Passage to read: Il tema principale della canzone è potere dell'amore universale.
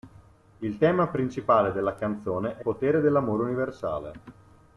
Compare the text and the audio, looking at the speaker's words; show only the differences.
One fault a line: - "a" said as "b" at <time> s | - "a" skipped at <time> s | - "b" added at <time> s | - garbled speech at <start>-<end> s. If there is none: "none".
none